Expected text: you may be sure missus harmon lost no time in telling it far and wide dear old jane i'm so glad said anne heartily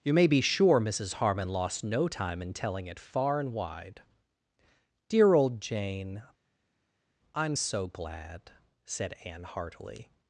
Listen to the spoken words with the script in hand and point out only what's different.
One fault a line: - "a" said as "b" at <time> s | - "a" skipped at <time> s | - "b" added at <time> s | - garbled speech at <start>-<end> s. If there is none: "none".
none